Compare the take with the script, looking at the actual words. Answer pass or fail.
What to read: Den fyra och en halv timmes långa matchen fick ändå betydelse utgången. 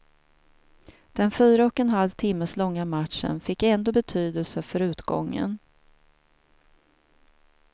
fail